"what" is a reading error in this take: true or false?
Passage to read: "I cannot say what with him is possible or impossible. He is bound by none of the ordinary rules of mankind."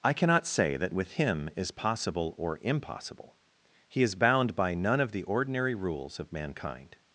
true